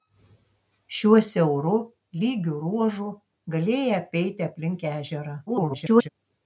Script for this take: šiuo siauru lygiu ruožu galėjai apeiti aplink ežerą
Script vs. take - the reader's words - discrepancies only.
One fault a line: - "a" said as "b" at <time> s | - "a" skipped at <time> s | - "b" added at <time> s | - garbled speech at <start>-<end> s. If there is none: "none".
- garbled speech at 5.5-6.1 s